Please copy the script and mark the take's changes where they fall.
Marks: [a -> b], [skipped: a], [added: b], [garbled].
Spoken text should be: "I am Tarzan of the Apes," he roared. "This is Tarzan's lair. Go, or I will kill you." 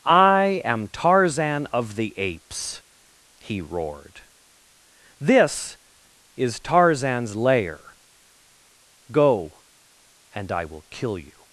"I am Tarzan of the Apes," he roared. "This is Tarzan's lair. Go, [or -> and] I will kill you."